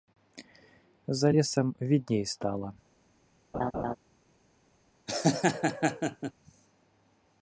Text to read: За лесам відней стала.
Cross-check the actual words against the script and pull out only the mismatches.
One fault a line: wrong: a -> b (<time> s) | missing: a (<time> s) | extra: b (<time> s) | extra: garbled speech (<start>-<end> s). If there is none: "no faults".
no faults